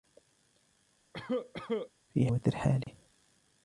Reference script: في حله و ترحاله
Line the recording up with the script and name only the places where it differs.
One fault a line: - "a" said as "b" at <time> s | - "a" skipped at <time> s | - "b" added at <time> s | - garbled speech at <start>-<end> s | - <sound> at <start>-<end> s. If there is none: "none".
- cough at 1.1-1.9 s
- "حله" skipped at 2.3 s
- dropout at 2.8-2.9 s